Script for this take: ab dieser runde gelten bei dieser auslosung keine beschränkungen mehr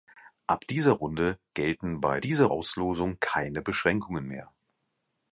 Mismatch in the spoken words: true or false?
false